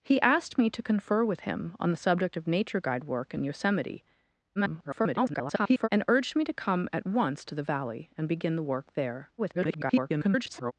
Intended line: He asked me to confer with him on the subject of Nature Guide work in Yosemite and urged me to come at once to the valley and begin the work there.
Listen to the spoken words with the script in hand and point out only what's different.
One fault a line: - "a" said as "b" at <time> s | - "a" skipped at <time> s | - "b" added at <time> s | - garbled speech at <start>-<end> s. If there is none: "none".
- garbled speech at 4.6-5.9 s
- garbled speech at 9.4-10.7 s